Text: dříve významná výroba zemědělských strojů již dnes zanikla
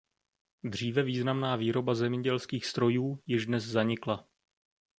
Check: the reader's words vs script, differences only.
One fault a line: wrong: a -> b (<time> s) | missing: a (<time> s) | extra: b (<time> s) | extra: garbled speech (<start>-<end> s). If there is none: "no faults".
no faults